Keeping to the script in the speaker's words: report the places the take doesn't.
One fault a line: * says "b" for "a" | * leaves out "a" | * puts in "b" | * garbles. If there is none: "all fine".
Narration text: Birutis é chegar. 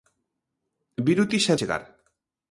all fine